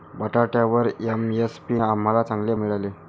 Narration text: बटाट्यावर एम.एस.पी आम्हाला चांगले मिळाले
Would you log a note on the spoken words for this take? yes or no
no